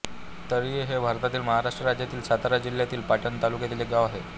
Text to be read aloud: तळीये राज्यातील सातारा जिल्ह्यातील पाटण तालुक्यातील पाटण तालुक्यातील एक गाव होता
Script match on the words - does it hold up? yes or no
no